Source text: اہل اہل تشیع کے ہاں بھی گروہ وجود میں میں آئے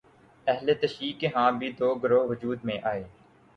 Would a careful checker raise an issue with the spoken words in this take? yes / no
yes